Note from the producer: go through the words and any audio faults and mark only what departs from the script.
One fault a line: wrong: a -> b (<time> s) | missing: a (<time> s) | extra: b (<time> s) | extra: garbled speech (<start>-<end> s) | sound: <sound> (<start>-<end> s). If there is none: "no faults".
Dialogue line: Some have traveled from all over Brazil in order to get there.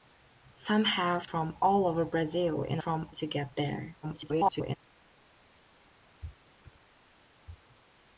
missing: traveled (1.3 s)
wrong: order -> from (2.8 s)
extra: garbled speech (4.0-4.8 s)